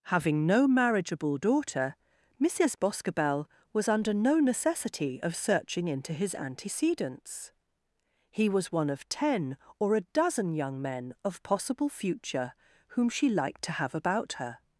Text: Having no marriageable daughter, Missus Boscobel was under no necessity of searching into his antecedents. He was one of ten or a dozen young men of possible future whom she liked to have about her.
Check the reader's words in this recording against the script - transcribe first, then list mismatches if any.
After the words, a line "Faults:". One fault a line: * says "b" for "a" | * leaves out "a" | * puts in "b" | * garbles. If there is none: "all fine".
Having no marriageable daughter, Missus Boscobel was under no necessity of searching into his antecedents. He was one of ten or a dozen young men of possible future whom she liked to have about her.
Faults:
all fine